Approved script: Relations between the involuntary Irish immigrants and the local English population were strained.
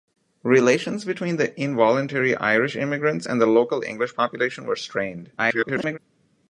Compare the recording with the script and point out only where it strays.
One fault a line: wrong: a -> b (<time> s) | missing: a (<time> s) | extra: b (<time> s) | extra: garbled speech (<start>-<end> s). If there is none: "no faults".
extra: garbled speech (5.4-6.0 s)